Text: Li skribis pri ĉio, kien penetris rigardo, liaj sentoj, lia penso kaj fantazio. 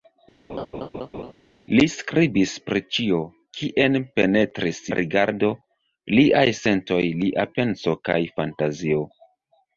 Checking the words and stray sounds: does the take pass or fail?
fail